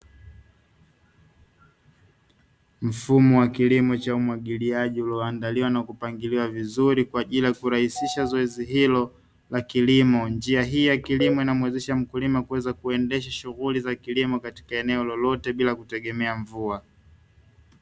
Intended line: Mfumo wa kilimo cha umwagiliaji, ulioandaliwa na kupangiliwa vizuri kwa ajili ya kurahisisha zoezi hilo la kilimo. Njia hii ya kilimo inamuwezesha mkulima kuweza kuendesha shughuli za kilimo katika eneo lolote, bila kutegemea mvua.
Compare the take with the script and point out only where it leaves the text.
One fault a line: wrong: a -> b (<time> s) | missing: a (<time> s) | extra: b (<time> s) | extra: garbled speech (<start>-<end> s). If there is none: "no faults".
no faults